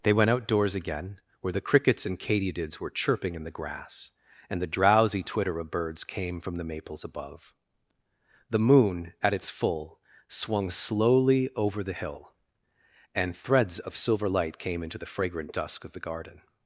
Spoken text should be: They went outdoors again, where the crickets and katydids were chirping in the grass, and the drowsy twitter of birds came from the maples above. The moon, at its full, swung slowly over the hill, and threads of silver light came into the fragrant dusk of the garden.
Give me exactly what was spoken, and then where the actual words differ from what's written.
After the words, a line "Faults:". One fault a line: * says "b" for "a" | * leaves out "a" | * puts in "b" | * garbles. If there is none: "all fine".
They went outdoors again, where the crickets and katydids were chirping in the grass, and the drowsy twitter of birds came from the maples above. The moon, at its full, swung slowly over the hill, and threads of silver light came into the fragrant dusk of the garden.
Faults:
all fine